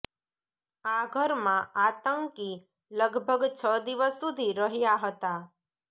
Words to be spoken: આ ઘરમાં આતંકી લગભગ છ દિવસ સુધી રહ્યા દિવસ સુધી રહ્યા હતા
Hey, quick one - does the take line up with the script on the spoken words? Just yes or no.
no